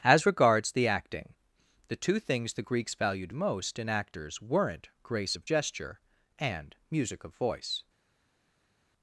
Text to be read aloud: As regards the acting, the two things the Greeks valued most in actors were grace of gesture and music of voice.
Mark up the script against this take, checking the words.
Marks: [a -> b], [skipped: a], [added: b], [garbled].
As regards the acting, the two things the Greeks valued most in actors [were -> weren't] grace of gesture and music of voice.